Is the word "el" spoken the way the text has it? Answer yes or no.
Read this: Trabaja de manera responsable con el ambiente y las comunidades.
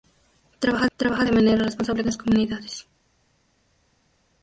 no